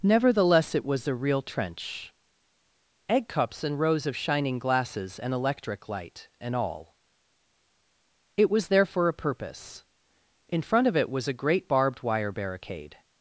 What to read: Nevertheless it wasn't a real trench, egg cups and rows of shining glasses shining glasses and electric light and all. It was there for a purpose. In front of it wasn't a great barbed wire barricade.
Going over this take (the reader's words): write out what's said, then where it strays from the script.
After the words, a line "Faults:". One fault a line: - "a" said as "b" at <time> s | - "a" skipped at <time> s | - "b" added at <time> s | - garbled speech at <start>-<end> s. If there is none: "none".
Nevertheless it was a real trench, egg cups and rows of shining glasses and electric light and all. It was there for a purpose. In front of it was a great barbed wire barricade.
Faults:
- "wasn't" said as "was" at 0.8 s
- "shining glasses" skipped at 5.2 s
- "wasn't" said as "was" at 11.1 s